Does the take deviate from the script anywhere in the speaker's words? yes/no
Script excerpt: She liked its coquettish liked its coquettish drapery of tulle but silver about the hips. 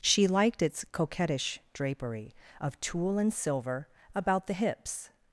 yes